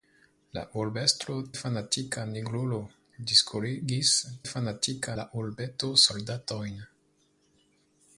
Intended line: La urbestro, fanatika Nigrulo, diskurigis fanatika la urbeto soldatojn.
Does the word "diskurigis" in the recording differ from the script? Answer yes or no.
no